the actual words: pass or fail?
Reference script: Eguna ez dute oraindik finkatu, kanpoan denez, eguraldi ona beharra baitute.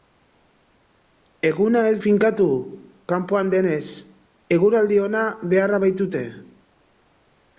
fail